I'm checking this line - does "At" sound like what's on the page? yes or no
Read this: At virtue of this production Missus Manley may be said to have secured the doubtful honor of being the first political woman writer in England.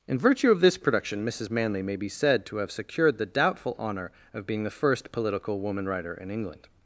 no